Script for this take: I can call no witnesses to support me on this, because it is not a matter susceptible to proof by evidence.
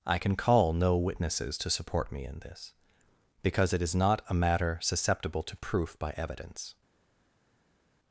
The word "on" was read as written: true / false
false